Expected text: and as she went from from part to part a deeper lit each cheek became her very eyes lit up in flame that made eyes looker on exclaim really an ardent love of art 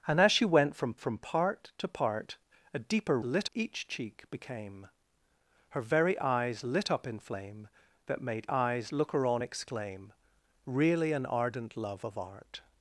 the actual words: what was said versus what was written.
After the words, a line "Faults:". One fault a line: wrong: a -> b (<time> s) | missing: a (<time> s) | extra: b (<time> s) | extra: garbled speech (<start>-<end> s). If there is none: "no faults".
and as she went from from part to part a deeper lit each cheek became her very eyes lit up in flame that made eyes looker on exclaim really an ardent love of art
Faults:
no faults